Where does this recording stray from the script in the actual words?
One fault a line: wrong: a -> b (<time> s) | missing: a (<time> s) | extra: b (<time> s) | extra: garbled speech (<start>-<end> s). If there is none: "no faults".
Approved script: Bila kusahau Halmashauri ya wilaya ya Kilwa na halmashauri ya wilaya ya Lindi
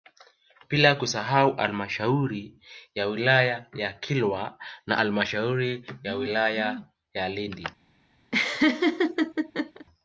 no faults